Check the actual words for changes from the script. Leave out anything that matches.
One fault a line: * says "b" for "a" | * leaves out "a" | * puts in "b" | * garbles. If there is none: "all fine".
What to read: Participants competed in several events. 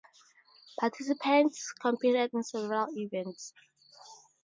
all fine